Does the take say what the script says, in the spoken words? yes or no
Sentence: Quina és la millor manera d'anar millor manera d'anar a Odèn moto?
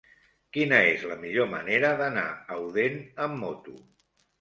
no